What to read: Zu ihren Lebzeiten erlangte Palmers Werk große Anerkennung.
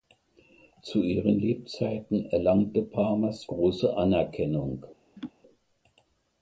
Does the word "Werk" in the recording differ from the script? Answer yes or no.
yes